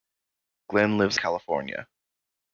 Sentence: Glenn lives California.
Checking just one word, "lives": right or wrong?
right